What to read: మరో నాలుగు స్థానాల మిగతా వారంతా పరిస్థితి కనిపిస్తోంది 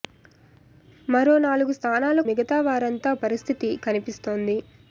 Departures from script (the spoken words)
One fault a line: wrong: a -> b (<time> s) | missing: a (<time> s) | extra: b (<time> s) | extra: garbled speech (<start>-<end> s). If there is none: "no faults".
no faults